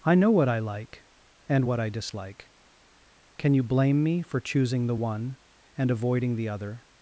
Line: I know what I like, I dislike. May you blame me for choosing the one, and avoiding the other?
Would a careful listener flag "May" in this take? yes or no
yes